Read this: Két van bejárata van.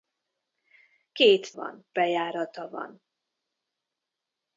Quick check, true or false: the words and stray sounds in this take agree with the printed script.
true